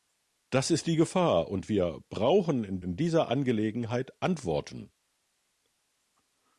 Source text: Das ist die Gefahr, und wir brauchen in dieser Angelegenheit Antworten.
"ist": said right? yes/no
yes